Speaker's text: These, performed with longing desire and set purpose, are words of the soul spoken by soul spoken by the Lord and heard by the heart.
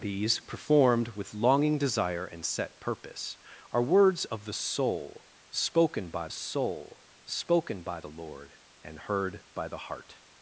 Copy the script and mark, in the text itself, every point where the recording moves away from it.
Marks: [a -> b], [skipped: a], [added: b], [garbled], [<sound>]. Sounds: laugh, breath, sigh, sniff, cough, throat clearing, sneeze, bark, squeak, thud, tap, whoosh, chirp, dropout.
These, performed with longing desire and set purpose, are words of the soul spoken by soul spoken by the Lord and heard by the heart.